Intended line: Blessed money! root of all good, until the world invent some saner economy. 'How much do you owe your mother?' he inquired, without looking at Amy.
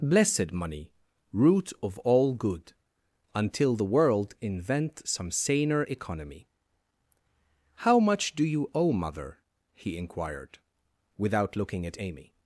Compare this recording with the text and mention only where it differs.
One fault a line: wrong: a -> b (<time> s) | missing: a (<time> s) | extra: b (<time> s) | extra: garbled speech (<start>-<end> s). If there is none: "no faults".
missing: your (8.9 s)